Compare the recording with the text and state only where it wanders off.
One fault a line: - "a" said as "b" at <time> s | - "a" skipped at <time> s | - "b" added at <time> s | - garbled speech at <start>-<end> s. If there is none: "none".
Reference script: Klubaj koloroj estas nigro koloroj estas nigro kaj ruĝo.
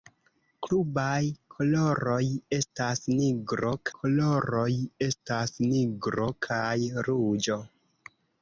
none